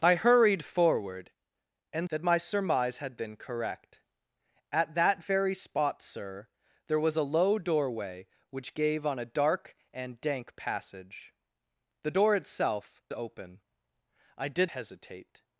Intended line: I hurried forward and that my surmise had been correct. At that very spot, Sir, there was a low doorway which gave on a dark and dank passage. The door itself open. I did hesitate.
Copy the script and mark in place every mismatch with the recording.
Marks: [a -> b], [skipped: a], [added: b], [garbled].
I hurried forward and that my surmise had been correct. At that very spot, Sir, there was a low doorway which gave on a dark and dank passage. The door itself open. I did hesitate.